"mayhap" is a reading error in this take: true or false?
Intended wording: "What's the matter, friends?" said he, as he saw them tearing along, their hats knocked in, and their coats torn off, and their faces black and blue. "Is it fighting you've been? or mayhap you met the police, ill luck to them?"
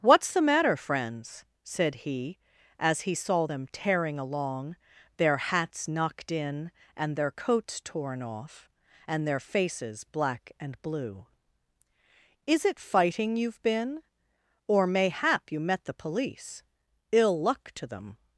false